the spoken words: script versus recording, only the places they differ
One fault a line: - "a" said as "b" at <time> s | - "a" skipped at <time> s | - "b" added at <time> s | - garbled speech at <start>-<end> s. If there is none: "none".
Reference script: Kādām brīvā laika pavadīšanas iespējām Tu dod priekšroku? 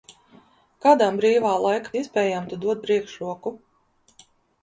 - "pavadīšanas" skipped at 1.9 s